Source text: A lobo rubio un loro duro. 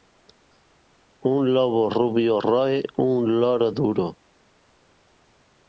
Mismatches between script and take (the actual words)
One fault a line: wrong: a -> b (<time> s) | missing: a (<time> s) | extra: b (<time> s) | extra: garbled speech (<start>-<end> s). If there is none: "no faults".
wrong: A -> Un (1.3 s)
extra: roe (2.4 s)